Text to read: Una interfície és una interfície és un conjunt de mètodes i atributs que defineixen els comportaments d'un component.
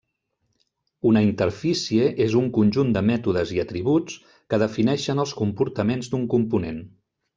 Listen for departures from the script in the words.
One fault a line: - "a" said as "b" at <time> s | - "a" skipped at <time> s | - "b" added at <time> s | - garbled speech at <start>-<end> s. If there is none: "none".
- "una interfície és" skipped at 2.4 s